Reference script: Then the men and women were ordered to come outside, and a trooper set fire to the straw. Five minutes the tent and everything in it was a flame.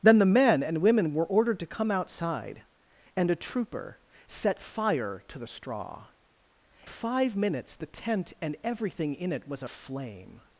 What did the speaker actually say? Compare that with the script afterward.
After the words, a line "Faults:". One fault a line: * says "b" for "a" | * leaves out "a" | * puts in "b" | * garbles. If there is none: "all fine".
Then the men and women were ordered to come outside, and a trooper set fire to the straw. Five minutes the tent and everything in it was a flame.
Faults:
all fine